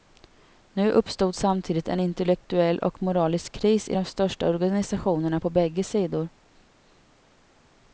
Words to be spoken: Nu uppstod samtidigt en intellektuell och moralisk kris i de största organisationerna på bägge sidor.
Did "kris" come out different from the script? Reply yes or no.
no